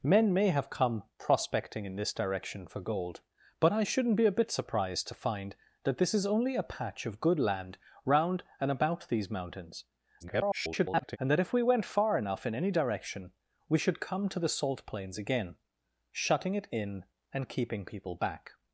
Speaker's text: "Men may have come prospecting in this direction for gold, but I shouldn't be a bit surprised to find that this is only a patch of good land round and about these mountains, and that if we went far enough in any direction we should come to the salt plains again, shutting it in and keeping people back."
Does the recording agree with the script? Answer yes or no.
no